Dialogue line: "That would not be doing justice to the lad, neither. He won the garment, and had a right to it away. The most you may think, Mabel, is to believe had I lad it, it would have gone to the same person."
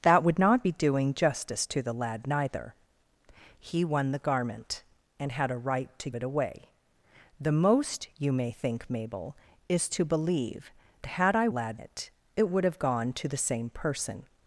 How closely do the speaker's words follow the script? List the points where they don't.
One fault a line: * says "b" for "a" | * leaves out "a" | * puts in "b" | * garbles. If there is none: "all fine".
all fine